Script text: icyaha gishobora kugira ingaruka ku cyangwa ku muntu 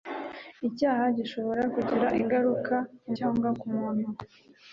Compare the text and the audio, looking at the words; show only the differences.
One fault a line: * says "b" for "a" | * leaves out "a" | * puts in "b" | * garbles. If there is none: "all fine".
all fine